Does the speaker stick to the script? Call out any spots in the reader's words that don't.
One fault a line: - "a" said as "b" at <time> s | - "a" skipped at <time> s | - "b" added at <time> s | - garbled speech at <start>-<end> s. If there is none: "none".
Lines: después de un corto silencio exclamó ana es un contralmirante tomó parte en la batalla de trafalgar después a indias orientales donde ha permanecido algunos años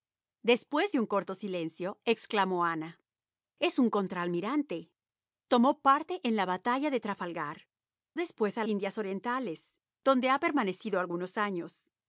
none